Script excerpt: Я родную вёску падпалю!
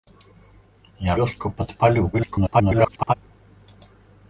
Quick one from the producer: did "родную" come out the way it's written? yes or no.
no